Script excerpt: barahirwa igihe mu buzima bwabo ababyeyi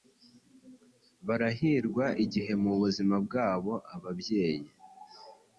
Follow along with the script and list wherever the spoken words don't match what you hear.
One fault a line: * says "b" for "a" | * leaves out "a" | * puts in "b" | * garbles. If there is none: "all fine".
all fine